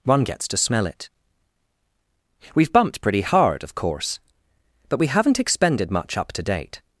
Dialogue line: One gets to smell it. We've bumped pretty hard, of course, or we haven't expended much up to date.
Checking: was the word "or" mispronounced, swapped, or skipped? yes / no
yes